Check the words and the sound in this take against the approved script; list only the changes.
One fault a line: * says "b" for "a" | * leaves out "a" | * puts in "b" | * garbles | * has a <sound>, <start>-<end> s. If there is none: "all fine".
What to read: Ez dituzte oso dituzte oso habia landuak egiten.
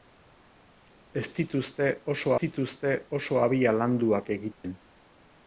* has a dropout, 4.5-4.6 s